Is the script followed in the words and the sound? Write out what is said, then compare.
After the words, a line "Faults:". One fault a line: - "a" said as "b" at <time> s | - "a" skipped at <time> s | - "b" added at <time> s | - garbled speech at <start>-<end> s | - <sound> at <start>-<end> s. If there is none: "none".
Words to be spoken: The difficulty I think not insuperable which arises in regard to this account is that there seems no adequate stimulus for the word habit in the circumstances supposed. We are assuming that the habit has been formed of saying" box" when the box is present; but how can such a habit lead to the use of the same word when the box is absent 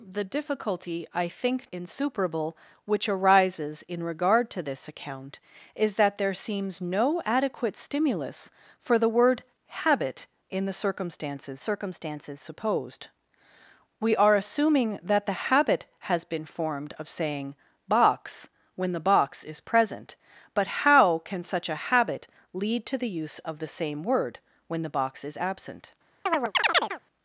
The difficulty I think insuperable which arises in regard to this account is that there seems no adequate stimulus for the word habit in the circumstances circumstances supposed. We are assuming that the habit has been formed of saying" box" when the box is present; but how can such a habit lead to the use of the same word when the box is absent
Faults:
- "not" skipped at 1.7 s
- "circumstances" added at 11.6 s
- chirp at 26.3-27.0 s